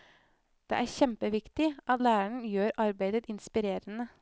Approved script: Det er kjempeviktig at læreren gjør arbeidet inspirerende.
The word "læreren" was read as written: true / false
true